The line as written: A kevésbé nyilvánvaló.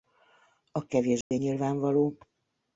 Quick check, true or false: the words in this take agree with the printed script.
true